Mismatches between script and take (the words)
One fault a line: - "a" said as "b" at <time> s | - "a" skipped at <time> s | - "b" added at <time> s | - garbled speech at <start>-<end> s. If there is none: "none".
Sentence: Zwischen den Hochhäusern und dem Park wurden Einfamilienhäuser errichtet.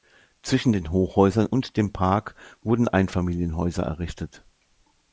none